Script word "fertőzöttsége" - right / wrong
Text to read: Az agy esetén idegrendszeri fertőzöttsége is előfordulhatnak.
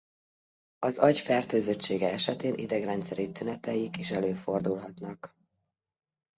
wrong